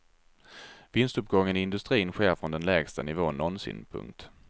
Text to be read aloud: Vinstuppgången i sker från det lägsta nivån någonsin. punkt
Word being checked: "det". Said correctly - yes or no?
no